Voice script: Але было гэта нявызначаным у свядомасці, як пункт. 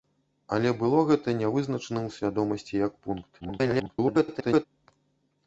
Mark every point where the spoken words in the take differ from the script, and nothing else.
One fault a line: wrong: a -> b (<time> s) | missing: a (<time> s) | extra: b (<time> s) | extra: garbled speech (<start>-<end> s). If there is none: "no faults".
extra: garbled speech (3.4-4.7 s)